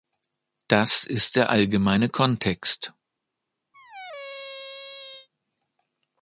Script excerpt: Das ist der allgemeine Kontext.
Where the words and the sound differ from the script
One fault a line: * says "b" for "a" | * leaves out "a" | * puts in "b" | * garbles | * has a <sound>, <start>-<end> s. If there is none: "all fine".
* has a squeak, 3.7-5.3 s